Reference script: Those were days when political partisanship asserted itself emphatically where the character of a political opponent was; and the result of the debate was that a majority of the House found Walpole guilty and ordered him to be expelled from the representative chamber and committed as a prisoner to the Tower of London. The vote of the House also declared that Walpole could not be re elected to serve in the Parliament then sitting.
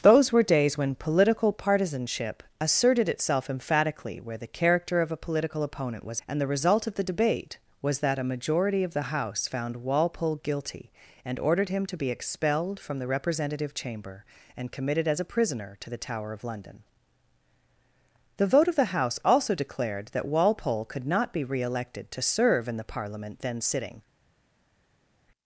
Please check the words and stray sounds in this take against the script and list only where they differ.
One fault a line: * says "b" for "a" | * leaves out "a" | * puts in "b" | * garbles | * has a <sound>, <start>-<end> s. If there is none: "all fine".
all fine